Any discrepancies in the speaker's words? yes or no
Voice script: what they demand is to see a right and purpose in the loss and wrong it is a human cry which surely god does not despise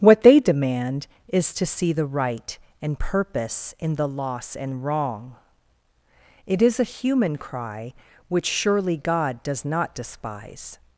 yes